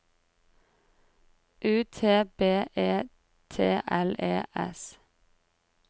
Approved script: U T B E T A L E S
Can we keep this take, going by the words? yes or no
no